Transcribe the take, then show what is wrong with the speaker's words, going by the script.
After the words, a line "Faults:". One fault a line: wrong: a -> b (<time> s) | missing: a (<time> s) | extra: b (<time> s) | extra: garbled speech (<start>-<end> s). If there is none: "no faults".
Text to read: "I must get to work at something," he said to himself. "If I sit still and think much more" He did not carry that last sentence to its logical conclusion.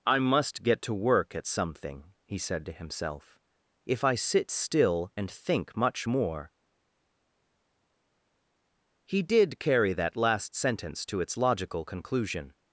"I must get to work at something," he said to himself. "If I sit still and think much more" He did carry that last sentence to its logical conclusion.
Faults:
missing: not (9.6 s)